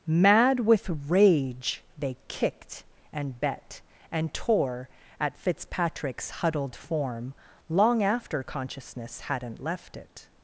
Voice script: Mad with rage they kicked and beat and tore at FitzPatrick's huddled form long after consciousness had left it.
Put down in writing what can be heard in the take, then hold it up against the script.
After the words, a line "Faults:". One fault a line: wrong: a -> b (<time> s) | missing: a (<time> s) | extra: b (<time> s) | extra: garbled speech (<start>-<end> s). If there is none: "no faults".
Mad with rage they kicked and bet and tore at FitzPatrick's huddled form long after consciousness hadn't left it.
Faults:
wrong: beat -> bet (3.4 s)
wrong: had -> hadn't (9.2 s)